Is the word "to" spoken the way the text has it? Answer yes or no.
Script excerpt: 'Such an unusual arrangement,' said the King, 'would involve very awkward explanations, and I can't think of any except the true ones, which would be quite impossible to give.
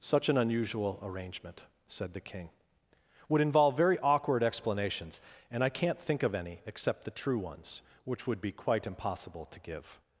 yes